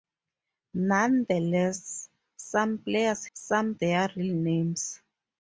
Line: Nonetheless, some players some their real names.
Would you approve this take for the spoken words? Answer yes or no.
yes